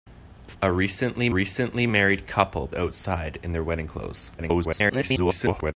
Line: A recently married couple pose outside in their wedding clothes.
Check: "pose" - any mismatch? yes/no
yes